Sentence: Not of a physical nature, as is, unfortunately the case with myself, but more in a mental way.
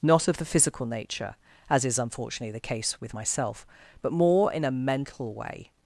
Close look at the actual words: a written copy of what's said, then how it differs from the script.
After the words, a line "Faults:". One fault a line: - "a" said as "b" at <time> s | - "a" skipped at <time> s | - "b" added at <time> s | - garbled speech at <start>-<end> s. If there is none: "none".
Not of the physical nature, as is, unfortunately the case with myself, but more in a mental way.
Faults:
- "a" said as "the" at 0.4 s